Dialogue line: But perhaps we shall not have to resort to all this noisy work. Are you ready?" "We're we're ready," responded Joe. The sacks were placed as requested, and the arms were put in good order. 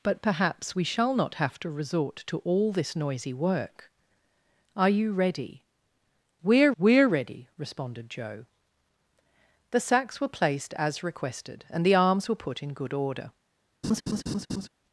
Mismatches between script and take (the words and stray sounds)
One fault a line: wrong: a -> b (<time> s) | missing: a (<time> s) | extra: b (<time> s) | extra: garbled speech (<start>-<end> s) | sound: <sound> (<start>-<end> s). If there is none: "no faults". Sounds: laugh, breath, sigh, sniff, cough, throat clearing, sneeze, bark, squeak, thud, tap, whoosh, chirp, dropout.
sound: laugh (13.8-14.7 s)